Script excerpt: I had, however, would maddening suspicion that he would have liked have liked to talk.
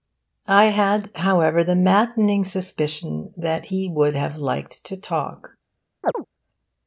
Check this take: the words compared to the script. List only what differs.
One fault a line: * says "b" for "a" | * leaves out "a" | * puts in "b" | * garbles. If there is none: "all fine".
* says "the" for "would"
* leaves out "have liked"